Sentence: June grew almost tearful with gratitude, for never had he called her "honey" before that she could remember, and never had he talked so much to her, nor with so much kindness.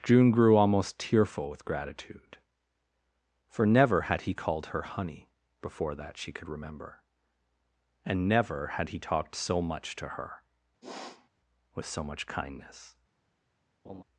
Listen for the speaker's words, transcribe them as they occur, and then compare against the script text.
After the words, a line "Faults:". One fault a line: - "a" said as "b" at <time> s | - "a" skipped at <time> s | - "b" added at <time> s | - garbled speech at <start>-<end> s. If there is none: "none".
June grew almost tearful with gratitude, for never had he called her "honey" before that she could remember, and never had he talked so much to her, with so much kindness.
Faults:
- "nor" skipped at 10.4 s